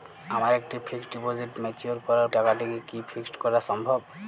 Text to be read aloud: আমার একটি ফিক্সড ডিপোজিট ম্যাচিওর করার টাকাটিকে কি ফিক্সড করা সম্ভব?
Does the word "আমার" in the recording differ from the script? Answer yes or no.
no